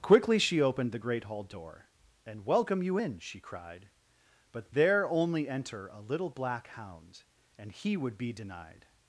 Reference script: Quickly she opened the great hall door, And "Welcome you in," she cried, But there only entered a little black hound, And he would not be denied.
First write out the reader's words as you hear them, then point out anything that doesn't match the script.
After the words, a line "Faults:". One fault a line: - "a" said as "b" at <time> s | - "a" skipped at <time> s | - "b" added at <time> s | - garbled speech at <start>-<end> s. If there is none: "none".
Quickly she opened the great hall door, And "Welcome you in," she cried, But there only enter a little black hound, And he would be denied.
Faults:
- "entered" said as "enter" at 5.5 s
- "not" skipped at 8.2 s